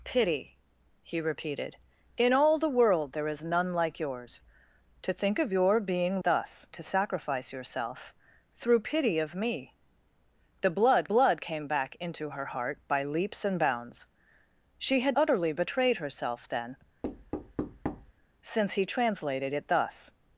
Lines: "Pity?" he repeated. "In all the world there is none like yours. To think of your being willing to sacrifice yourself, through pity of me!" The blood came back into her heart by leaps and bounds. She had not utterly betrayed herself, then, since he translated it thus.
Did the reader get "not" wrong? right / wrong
wrong